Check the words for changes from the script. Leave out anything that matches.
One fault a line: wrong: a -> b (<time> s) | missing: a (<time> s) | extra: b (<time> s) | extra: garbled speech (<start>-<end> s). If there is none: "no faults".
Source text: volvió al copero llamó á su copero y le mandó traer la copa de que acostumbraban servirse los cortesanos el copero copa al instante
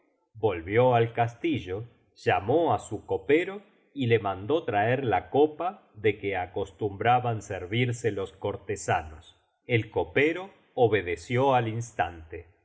wrong: copero -> castillo (1.1 s)
wrong: copa -> obedeció (10.7 s)